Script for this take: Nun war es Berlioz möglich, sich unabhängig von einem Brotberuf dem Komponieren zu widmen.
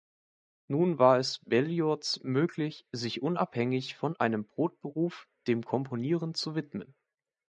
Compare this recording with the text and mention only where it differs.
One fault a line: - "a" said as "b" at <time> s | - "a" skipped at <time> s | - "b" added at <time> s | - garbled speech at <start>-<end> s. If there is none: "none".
none